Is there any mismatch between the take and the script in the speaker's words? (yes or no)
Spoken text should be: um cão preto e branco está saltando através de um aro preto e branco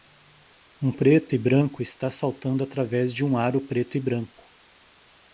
yes